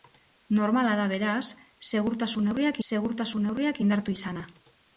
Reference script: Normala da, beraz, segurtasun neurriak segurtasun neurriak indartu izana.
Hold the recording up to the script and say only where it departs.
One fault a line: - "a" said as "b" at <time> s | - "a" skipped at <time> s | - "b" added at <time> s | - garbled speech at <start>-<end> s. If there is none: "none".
none